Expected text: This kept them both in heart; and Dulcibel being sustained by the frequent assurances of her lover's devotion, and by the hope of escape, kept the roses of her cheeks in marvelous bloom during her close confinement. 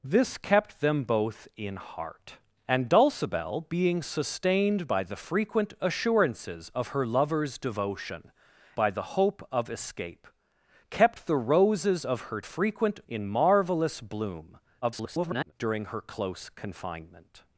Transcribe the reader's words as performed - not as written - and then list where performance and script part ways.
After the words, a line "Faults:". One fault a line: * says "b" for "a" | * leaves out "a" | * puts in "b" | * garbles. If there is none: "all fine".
This kept them both in heart; and Dulcibel being sustained by the frequent assurances of her lover's devotion, by the hope of escape, kept the roses of her frequent in marvelous bloom [garbled] during her close confinement.
Faults:
* leaves out "and"
* says "frequent" for "cheeks"
* garbles